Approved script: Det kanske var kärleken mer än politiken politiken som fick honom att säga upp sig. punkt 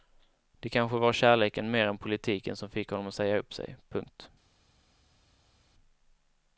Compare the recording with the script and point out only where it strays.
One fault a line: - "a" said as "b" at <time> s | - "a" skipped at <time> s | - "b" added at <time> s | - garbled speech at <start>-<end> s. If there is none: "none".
- "politiken" skipped at 2.5 s